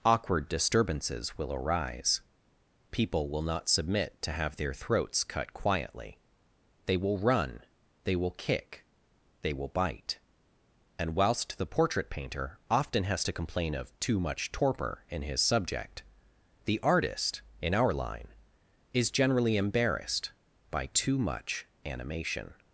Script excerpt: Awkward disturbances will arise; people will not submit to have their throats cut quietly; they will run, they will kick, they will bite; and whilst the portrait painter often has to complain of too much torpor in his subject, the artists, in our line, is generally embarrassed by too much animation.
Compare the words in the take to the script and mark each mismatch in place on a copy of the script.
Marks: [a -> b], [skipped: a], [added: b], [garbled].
Awkward disturbances will arise; people will not submit to have their throats cut quietly; they will run, they will kick, they will bite; and whilst the portrait painter often has to complain of too much torpor in his subject, the [artists, -> artist] in our line, is generally embarrassed by too much animation.